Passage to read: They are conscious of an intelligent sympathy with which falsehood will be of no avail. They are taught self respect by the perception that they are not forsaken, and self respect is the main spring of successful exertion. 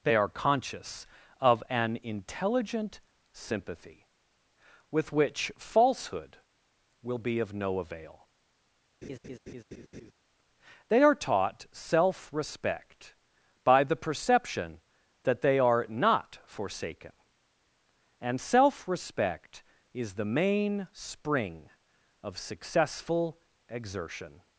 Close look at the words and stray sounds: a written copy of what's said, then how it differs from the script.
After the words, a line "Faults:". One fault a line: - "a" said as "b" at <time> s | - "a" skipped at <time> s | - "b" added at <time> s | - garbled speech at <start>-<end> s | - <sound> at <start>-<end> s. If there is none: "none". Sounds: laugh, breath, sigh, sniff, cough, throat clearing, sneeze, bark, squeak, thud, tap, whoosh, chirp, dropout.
They are conscious of an intelligent sympathy with which falsehood will be of no avail. They are taught self respect by the perception that they are not forsaken, and self respect is the main spring of successful exertion.
Faults:
- laugh at 9.0-10.1 s